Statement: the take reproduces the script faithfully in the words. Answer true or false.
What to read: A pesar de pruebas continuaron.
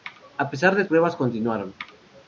true